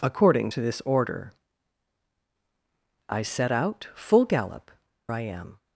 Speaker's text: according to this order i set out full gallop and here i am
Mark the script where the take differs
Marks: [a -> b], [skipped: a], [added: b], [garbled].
according to this order i set out full gallop [skipped: and here] i am